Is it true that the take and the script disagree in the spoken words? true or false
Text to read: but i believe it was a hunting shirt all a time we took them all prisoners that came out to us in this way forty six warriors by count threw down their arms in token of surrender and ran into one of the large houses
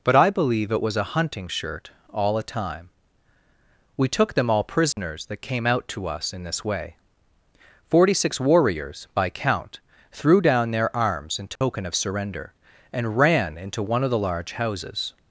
false